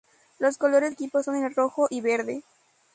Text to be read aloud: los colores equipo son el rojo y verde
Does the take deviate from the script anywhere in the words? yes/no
no